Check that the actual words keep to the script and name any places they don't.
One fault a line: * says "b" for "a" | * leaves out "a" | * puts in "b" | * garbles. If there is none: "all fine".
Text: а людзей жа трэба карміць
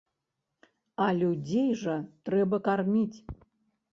all fine